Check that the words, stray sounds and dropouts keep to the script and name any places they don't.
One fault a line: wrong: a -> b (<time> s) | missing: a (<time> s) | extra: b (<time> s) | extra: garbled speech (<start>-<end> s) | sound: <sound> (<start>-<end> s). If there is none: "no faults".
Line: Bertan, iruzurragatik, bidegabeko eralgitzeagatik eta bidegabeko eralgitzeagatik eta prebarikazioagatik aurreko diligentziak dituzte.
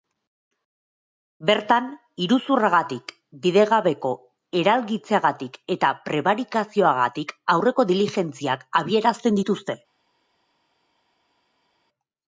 missing: bidegabeko eralgitzeagatik eta (5.9 s)
extra: abiarazten (8.8 s)